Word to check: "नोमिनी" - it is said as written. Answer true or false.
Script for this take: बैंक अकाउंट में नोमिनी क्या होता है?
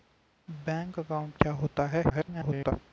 false